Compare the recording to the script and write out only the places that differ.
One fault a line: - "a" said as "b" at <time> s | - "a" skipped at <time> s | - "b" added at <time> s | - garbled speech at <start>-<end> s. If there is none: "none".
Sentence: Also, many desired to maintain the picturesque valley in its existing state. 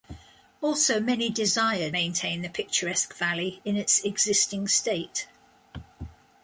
- "to" skipped at 1.9 s